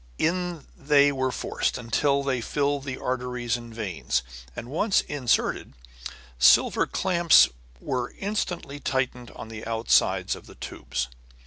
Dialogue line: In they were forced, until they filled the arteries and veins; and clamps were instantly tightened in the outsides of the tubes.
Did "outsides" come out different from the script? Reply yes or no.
no